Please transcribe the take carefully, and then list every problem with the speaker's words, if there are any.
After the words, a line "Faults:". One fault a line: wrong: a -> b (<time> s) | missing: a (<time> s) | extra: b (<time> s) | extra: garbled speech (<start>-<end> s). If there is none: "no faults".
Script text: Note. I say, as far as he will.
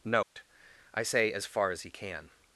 Note. I say, as far as he can.
Faults:
wrong: will -> can (1.9 s)